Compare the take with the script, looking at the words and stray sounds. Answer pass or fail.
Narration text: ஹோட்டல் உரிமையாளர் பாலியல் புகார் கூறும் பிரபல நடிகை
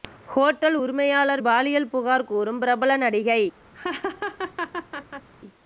fail